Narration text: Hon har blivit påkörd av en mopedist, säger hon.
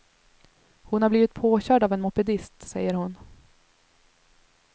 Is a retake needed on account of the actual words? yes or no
no